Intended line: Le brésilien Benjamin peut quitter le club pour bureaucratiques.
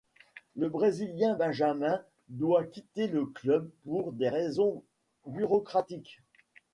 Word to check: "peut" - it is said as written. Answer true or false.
false